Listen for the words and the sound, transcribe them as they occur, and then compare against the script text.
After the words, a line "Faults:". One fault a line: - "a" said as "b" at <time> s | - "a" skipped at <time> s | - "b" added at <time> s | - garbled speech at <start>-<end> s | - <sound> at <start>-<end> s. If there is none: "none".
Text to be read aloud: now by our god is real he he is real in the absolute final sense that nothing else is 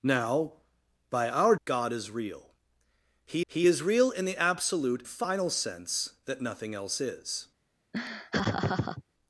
now by our god is real he he is real in the absolute final sense that nothing else is
Faults:
- laugh at 7.9-9.0 s